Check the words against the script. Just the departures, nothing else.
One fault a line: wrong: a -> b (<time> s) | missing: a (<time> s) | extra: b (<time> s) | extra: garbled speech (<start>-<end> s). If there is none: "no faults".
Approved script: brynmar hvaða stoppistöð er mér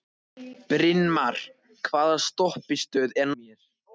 no faults